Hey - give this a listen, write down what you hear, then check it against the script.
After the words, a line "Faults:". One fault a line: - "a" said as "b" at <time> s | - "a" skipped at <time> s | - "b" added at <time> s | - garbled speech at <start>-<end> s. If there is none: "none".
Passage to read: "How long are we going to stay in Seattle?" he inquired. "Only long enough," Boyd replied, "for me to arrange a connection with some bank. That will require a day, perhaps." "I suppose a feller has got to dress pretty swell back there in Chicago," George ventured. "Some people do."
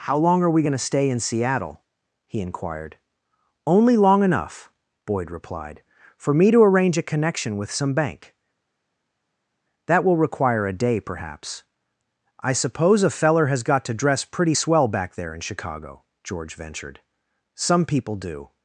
"How long are we going to stay in Seattle?" he inquired. "Only long enough," Boyd replied, "for me to arrange a connection with some bank. That will require a day, perhaps." "I suppose a feller has got to dress pretty swell back there in Chicago," George ventured. "Some people do."
Faults:
none